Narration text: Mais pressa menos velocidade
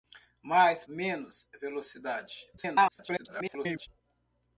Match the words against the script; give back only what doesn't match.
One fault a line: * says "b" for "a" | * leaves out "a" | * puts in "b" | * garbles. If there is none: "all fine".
* leaves out "pressa"
* garbles